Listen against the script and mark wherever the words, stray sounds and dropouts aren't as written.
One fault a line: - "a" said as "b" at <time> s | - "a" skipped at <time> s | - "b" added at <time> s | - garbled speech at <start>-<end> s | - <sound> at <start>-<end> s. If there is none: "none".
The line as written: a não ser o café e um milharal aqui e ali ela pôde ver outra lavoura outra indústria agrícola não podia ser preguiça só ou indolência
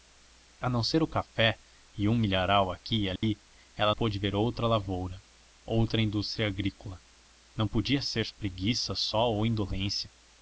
- dropout at 3.2-3.2 s